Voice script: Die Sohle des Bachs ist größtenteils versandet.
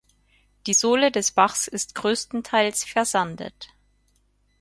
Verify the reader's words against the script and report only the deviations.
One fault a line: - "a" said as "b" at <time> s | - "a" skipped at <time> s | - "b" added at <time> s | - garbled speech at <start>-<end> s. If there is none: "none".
none